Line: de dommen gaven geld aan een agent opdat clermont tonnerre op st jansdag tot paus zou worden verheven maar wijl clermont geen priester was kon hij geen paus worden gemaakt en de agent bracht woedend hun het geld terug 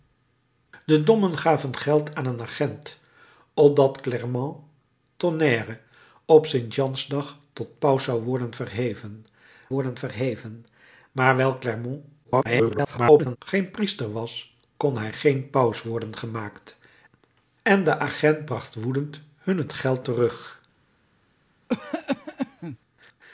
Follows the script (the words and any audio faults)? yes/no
no